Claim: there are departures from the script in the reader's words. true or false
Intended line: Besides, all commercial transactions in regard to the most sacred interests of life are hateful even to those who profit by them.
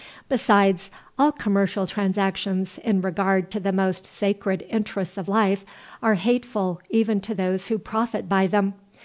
false